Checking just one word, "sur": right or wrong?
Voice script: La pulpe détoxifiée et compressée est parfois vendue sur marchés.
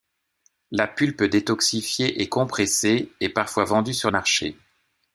right